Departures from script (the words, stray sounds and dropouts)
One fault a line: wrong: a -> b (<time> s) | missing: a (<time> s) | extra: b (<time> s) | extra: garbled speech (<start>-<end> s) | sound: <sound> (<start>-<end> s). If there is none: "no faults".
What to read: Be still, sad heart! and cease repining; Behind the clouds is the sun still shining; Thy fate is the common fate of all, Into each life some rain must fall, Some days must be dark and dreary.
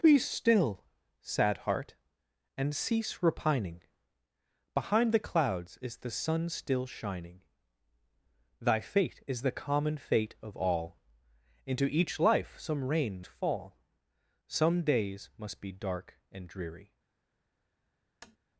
missing: must (13.2 s)
sound: tap (18.2-18.4 s)